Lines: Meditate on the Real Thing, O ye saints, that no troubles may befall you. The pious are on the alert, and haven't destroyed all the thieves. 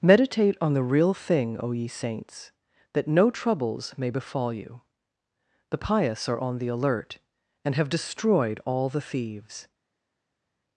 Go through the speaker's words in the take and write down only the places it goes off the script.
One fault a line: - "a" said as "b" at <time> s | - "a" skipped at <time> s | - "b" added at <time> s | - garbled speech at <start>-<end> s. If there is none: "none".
- "haven't" said as "have" at 7.7 s